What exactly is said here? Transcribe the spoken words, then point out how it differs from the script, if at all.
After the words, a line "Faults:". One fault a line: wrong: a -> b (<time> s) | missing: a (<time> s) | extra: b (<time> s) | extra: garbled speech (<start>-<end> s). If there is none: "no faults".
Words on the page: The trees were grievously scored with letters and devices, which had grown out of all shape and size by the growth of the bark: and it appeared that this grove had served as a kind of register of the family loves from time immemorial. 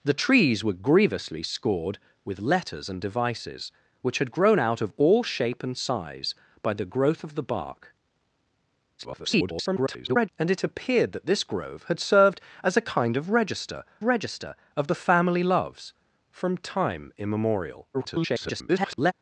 The trees were grievously scored with letters and devices, which had grown out of all shape and size by the growth of the bark: [garbled] and it appeared that this grove had served as a kind of register register of the family loves from time immemorial. [garbled]
Faults:
extra: garbled speech (9.0-10.3 s)
extra: register (14.0 s)
extra: garbled speech (17.9-19.1 s)